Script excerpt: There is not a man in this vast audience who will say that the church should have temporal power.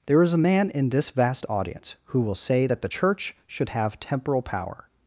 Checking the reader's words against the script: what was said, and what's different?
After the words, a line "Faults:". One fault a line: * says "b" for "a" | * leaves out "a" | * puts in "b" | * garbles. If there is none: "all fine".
There is a man in this vast audience who will say that the church should have temporal power.
Faults:
* leaves out "not"